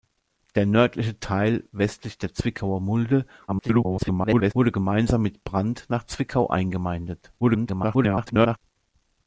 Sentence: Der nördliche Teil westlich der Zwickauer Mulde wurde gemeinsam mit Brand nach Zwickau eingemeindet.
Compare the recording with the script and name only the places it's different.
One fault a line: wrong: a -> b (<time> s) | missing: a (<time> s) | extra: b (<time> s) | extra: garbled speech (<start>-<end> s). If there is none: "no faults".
extra: garbled speech (3.5-4.5 s)
extra: garbled speech (7.4-8.6 s)